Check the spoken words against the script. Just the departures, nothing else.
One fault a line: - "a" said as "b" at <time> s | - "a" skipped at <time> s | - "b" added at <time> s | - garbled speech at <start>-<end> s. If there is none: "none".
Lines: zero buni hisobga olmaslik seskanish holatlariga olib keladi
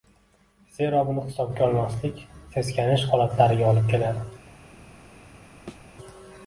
none